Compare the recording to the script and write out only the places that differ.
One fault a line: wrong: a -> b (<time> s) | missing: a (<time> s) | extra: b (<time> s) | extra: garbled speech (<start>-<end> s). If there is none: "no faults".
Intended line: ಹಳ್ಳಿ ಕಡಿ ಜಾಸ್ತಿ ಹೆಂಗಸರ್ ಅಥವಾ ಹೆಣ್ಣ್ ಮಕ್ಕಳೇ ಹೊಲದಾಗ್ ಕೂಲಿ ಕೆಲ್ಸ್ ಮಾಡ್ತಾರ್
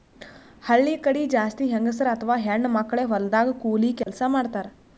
no faults